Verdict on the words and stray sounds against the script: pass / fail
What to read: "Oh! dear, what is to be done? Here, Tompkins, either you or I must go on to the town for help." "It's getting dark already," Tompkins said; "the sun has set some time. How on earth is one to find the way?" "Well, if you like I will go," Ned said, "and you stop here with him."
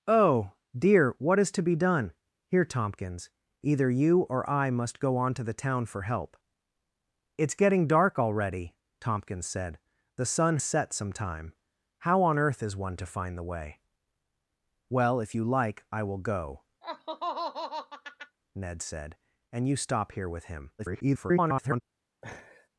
fail